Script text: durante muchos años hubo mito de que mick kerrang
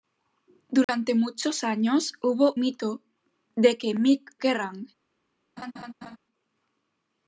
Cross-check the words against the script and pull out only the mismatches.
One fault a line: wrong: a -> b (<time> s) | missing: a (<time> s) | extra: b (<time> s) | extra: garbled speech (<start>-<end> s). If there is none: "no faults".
no faults